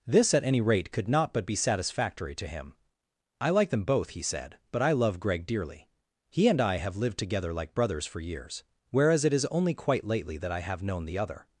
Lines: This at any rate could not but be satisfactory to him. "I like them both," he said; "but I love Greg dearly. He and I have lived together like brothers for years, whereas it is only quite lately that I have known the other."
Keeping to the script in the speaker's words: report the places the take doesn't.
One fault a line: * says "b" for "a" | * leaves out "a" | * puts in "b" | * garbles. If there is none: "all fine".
all fine